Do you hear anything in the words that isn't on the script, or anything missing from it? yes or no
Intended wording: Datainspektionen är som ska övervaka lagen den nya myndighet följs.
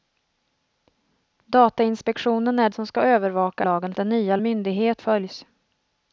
no